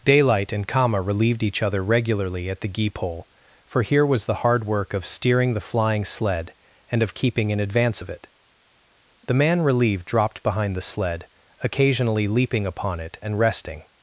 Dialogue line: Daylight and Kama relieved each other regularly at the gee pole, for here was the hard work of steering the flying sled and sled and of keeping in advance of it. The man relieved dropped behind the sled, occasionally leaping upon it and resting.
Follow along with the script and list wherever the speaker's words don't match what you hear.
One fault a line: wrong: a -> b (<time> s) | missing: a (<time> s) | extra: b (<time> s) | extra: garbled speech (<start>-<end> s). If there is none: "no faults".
missing: sled and (7.0 s)